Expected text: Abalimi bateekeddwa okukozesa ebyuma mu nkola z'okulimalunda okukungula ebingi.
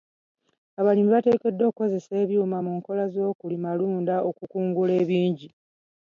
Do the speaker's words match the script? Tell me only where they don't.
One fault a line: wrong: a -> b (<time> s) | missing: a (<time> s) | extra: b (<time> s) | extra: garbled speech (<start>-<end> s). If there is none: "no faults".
no faults